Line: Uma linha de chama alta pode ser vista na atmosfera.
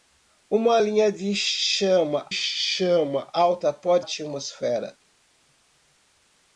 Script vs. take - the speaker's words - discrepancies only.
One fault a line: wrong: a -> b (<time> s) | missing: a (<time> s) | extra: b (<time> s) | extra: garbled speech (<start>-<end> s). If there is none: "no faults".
extra: chama (2.3 s)
missing: ser vista na (4.0 s)